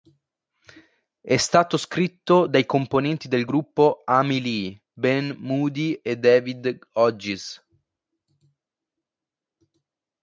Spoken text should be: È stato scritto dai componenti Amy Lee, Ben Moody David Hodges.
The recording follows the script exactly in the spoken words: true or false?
false